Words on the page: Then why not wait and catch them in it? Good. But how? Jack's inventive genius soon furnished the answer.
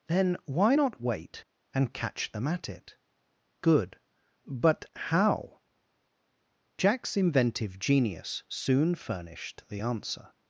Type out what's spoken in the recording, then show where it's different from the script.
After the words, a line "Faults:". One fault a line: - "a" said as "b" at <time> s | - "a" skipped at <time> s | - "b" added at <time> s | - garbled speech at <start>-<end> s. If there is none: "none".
Then why not wait and catch them at it? Good. But how? Jack's inventive genius soon furnished the answer.
Faults:
- "in" said as "at" at 2.5 s